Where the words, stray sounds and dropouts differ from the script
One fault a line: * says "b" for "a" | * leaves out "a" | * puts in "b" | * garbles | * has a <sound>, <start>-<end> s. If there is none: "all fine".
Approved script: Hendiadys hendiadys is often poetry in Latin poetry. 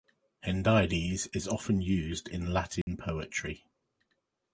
* leaves out "hendiadys"
* says "used" for "poetry"
* has a dropout, 2.8-2.9 s